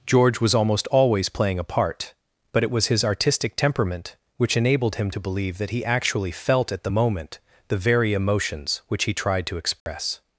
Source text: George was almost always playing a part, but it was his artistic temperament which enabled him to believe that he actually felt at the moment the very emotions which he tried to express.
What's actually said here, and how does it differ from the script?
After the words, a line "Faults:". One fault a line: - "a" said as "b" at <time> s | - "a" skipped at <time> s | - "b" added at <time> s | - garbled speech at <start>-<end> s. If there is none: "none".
George was almost always playing a part, but it was his artistic temperament which enabled him to believe that he actually felt at the moment the very emotions which he tried to express.
Faults:
none